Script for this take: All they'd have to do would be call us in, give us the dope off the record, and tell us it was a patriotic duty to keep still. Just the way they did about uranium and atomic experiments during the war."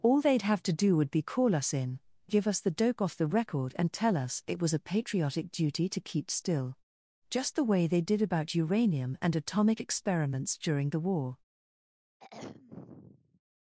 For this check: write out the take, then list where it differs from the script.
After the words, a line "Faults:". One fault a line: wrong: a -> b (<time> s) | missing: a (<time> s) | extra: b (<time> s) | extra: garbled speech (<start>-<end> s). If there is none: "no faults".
All they'd have to do would be call us in, give us the dope off the record, and tell us it was a patriotic duty to keep still. Just the way they did about uranium and atomic experiments during the war."
Faults:
no faults